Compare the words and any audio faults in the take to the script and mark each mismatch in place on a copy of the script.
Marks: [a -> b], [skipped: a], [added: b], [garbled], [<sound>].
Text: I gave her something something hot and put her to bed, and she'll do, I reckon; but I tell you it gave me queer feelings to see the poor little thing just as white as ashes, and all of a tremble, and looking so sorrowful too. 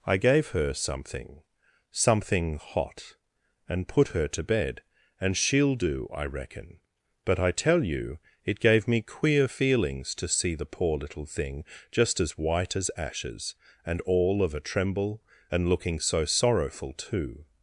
I gave her something something hot and put her to bed, and she'll do, I reckon; but I tell you it gave me queer feelings to see the poor little thing just as white as ashes, and all of a tremble, and looking so sorrowful too.